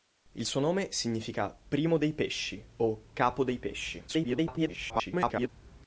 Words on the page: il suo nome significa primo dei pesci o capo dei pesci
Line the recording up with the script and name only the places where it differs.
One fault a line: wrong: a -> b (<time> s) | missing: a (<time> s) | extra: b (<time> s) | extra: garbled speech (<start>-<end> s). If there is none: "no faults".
extra: garbled speech (4.1-5.5 s)